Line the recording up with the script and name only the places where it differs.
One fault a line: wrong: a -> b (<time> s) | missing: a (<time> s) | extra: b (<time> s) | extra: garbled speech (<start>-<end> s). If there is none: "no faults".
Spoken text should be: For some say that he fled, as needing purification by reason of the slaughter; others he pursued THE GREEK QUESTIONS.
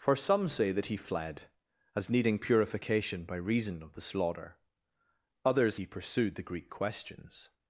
no faults